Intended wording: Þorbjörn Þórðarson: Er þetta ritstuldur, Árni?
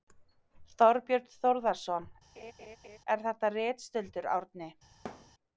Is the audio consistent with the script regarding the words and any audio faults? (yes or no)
no